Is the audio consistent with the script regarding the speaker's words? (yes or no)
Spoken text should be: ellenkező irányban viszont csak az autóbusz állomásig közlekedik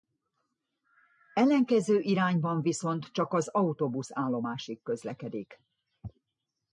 yes